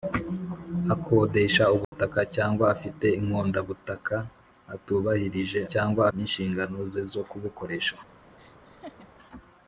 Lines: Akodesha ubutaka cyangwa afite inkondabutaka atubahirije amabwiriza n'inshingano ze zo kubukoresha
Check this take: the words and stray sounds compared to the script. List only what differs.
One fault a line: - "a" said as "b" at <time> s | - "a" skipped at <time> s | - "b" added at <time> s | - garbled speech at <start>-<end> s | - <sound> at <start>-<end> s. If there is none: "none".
- dropout at 1.8-1.9 s
- "amabwiriza" said as "cyangwa" at 5.7 s
- laugh at 8.4-9.1 s